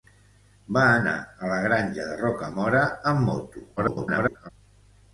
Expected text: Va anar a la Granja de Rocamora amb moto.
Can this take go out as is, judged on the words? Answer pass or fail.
fail